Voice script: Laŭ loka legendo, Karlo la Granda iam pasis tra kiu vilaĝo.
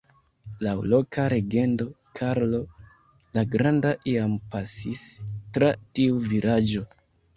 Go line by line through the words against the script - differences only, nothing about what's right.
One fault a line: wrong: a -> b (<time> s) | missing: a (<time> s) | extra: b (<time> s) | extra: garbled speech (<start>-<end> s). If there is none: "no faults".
wrong: kiu -> tiu (6.0 s)